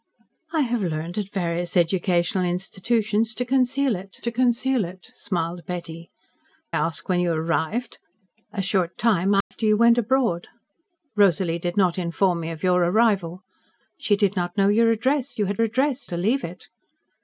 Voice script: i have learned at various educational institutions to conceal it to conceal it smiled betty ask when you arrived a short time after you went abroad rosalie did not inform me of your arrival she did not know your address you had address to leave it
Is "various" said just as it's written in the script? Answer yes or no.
yes